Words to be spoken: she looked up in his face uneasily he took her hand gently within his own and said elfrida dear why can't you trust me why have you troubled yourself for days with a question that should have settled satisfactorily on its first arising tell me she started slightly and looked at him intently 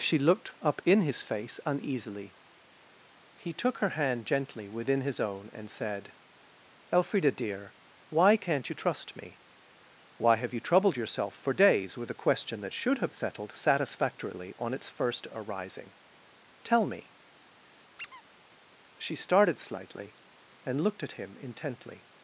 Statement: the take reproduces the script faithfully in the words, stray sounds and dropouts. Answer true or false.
false